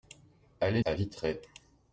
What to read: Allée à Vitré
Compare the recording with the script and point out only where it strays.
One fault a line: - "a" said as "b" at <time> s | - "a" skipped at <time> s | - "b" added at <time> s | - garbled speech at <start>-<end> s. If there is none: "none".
none